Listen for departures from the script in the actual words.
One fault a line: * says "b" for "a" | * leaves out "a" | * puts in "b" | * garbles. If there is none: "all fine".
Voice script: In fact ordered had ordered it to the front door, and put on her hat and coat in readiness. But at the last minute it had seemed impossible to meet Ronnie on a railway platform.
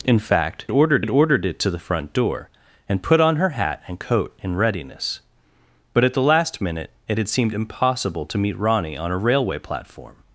all fine